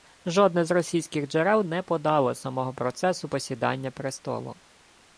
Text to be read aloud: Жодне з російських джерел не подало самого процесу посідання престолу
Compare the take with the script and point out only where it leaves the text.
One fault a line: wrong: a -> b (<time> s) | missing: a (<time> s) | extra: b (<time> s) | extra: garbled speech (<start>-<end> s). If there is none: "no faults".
no faults